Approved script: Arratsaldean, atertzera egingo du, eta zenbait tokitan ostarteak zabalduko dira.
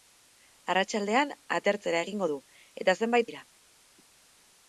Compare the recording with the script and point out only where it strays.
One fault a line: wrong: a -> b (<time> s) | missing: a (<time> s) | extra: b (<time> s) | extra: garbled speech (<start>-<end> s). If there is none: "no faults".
missing: tokitan ostarteak zabalduko (3.3 s)